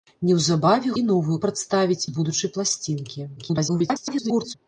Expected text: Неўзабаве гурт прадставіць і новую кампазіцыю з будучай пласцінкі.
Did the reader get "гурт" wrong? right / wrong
wrong